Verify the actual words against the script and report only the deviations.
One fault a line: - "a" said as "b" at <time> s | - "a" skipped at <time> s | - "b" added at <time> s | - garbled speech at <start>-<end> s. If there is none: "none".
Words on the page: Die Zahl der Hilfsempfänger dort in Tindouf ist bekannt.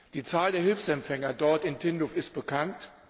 none